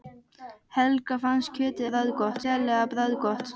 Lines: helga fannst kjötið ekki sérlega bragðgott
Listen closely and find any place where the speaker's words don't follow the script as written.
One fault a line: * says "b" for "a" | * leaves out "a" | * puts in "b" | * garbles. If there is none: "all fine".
* says "bragðgott" for "ekki"